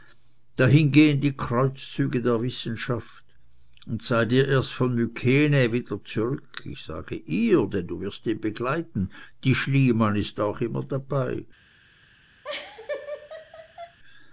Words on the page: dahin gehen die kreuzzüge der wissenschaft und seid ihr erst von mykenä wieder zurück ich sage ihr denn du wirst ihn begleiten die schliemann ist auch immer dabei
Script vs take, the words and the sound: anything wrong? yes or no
yes